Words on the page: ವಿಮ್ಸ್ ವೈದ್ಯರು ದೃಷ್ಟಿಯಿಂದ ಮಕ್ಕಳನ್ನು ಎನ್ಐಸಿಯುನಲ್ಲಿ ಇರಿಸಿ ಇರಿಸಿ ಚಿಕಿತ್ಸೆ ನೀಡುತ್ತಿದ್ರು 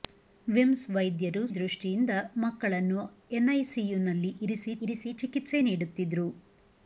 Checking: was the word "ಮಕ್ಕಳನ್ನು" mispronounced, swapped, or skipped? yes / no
no